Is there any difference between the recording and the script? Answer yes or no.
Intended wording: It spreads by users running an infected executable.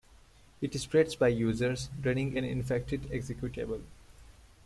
no